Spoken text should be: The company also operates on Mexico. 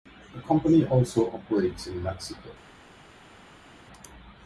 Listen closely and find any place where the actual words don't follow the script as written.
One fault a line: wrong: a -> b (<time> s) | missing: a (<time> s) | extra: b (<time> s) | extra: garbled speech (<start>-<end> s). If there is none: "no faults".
wrong: on -> in (1.9 s)